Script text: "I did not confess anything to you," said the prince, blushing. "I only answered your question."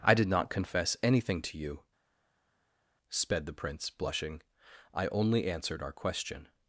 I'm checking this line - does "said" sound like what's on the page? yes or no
no